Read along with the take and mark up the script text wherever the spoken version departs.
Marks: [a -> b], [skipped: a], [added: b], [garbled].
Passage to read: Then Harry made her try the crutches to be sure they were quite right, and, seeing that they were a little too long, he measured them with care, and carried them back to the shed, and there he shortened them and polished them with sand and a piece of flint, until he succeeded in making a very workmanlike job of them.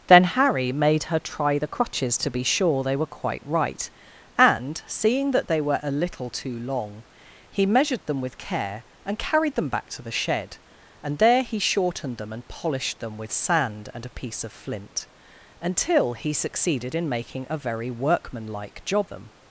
Then Harry made her try the crutches to be sure they were quite right, and, seeing that they were a little too long, he measured them with care, and carried them back to the shed, and there he shortened them and polished them with sand and a piece of flint, until he succeeded in making a very workmanlike job [skipped: of] them.